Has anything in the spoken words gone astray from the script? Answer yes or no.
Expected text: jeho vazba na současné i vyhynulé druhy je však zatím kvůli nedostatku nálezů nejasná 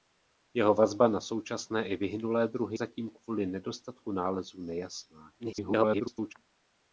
yes